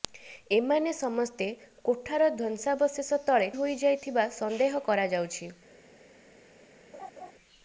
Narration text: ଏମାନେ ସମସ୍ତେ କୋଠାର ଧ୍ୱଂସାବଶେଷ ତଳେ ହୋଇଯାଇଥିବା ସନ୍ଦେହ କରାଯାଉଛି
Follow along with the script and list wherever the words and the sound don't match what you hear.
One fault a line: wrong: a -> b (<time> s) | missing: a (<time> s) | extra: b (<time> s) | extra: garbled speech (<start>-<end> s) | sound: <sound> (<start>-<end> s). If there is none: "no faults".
sound: laugh (6.9-7.3 s)